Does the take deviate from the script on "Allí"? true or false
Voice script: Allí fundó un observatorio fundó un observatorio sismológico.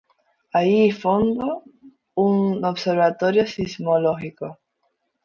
false